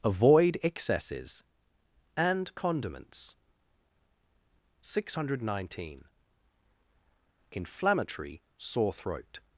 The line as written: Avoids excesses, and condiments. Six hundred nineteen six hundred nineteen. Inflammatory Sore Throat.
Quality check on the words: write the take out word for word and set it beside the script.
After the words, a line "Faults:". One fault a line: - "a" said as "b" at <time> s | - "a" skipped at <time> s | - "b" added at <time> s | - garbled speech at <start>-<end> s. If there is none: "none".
Avoid excesses, and condiments. Six hundred nineteen. Inflammatory Sore Throat.
Faults:
- "Avoids" said as "Avoid" at 0.0 s
- "six hundred nineteen" skipped at 6.0 s